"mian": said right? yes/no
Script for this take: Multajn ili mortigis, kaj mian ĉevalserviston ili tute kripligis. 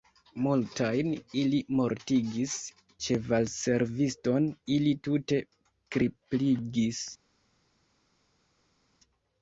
no